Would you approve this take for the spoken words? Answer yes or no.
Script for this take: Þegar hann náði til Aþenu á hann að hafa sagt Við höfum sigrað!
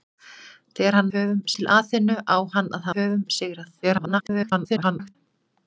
no